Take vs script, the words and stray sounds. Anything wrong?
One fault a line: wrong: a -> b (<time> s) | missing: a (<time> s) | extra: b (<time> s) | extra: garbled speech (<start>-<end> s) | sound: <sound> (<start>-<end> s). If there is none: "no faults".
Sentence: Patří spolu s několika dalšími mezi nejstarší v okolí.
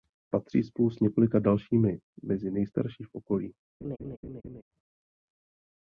sound: laugh (3.8-4.6 s)